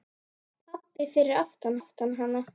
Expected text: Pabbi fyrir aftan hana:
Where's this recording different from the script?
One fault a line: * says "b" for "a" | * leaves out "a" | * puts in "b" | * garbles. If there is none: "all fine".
* puts in "aftan"